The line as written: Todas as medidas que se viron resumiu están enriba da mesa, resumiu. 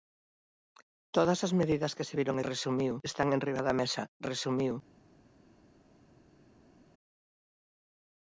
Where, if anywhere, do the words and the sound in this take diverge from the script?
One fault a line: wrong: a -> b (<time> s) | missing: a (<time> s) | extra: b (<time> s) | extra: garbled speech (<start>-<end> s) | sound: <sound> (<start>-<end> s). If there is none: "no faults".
no faults